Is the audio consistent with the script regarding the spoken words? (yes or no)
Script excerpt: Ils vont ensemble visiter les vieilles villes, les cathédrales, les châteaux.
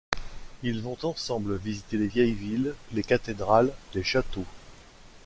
yes